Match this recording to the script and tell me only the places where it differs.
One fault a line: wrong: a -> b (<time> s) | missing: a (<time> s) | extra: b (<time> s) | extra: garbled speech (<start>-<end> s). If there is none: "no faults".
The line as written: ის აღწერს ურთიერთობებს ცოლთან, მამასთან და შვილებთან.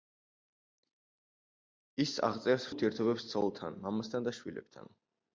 no faults